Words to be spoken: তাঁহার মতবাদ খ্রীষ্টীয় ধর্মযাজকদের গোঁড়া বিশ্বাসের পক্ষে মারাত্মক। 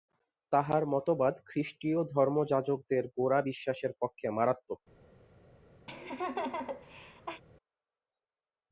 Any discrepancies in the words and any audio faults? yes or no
yes